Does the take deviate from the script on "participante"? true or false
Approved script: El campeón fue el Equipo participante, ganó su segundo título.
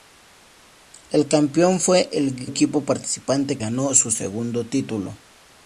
false